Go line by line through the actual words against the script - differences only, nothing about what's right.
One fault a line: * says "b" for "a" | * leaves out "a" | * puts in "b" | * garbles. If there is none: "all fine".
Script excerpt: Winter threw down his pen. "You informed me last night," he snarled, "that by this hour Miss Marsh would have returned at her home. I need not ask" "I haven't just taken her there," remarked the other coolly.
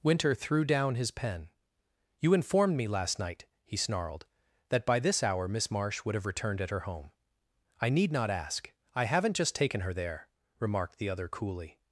all fine